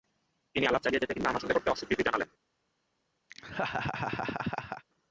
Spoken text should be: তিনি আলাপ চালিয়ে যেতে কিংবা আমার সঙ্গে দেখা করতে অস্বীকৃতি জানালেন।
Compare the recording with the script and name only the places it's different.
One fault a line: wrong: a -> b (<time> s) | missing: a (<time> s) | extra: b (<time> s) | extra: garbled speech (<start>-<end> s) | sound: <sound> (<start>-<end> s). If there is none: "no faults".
missing: দেখা (1.6 s)
sound: laugh (3.3-4.8 s)